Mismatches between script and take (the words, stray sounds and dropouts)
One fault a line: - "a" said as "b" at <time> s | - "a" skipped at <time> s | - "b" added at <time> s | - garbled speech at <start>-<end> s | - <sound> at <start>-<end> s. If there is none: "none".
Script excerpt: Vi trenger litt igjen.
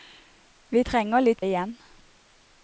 none